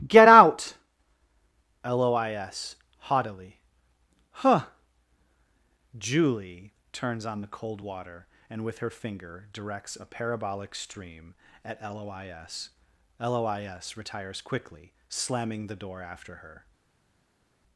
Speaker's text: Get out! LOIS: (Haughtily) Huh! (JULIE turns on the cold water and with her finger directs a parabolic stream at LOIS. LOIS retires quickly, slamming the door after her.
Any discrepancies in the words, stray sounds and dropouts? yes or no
no